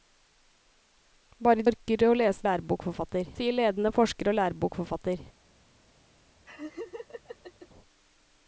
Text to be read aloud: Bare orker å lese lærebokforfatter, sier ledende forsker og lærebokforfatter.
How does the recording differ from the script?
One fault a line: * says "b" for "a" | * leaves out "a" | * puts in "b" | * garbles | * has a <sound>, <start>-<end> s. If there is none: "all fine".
* has a laugh, 6.4-7.7 s